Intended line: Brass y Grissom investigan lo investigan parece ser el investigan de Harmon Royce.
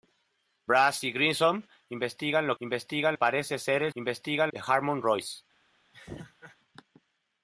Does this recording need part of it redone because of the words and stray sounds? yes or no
yes